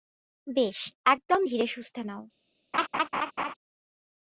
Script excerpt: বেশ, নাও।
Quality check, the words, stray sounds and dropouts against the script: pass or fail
fail